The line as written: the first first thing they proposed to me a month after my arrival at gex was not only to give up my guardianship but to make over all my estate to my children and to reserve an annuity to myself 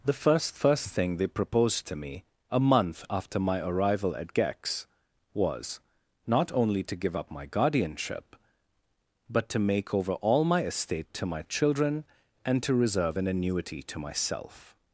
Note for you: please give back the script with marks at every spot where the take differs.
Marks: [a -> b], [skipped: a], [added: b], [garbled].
the first first thing they proposed to me a month after my arrival at gex was not only to give up my guardianship but to make over all my estate to my children and to reserve an annuity to myself